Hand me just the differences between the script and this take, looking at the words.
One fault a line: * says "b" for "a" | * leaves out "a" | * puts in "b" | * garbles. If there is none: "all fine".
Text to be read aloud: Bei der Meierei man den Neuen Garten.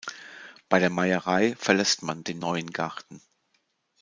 * puts in "verlässt"